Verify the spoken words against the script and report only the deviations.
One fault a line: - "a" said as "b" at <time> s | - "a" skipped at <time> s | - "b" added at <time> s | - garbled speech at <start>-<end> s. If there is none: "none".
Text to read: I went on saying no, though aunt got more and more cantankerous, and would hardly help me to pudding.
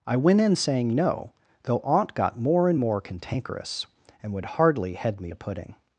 - "on" said as "in" at 0.4 s
- "help" said as "head" at 4.9 s